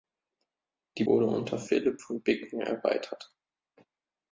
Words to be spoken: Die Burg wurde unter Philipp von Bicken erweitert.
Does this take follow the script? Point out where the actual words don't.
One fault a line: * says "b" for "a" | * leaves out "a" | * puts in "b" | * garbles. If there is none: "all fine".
* leaves out "Burg"